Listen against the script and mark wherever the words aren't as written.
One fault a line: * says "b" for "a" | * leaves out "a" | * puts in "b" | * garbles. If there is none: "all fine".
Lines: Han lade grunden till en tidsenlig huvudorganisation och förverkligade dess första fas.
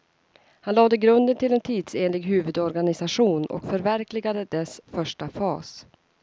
all fine